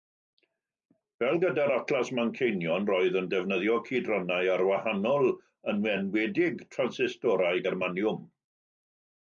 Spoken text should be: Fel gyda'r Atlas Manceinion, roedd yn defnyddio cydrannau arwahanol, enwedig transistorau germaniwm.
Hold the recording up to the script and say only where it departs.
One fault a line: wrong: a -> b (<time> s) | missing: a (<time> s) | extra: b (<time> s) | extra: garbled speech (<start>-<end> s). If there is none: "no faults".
extra: yn (5.8 s)